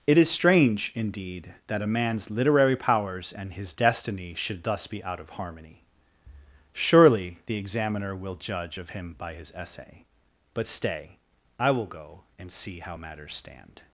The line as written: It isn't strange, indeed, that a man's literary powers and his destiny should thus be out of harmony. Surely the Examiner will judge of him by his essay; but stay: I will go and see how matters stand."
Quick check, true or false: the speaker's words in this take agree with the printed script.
false